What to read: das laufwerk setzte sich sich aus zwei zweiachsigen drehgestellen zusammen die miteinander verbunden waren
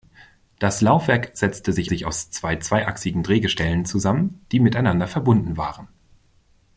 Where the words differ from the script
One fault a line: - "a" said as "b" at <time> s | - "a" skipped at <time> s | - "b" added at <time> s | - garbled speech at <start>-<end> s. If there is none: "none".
none